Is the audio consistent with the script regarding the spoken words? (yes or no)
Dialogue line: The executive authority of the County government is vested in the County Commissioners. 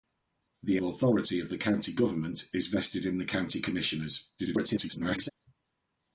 no